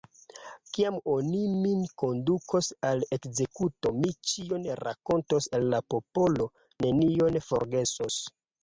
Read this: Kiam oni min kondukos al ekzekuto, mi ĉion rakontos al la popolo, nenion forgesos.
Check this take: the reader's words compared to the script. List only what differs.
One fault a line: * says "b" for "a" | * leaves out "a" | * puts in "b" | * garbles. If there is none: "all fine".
all fine